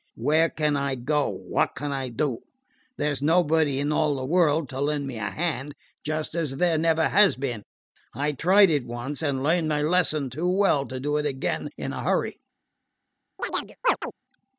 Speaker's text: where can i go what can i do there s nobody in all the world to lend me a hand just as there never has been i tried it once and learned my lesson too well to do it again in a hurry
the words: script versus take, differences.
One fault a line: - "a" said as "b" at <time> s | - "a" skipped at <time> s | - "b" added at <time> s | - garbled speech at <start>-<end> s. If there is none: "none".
none